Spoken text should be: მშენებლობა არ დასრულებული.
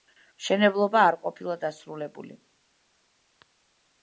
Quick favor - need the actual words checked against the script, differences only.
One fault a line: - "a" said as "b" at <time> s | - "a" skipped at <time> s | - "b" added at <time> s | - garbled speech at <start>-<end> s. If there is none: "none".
- "ყოფილა" added at 1.2 s